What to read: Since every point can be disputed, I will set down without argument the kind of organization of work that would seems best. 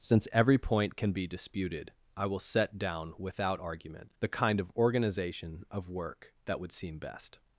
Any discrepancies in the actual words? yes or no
yes